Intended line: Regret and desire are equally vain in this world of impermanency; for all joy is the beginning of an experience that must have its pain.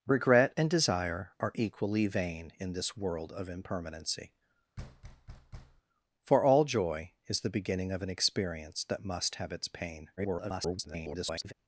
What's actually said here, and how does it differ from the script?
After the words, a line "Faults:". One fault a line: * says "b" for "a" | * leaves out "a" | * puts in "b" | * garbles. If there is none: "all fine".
Regret and desire are equally vain in this world of impermanency; for all joy is the beginning of an experience that must have its pain. [garbled]
Faults:
* garbles